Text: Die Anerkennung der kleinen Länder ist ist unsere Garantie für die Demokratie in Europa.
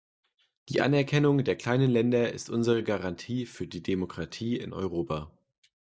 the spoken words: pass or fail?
fail